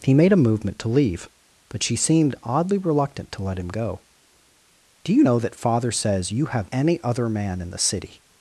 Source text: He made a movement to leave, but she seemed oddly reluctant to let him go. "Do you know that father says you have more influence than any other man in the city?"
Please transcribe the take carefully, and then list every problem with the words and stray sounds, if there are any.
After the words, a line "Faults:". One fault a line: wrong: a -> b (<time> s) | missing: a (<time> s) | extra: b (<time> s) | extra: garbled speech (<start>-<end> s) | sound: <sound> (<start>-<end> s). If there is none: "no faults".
He made a movement to leave, but she seemed oddly reluctant to let him go. "Do you know that father says you have any other man in the city?"
Faults:
missing: more influence than (6.7 s)